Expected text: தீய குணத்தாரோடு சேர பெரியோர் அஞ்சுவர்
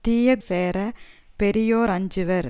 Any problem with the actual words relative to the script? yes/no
yes